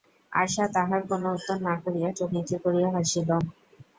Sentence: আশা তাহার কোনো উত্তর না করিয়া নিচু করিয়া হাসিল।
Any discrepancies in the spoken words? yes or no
yes